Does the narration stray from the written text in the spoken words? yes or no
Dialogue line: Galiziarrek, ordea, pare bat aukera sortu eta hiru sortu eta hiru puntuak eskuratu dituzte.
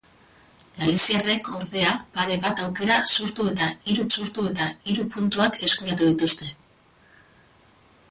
no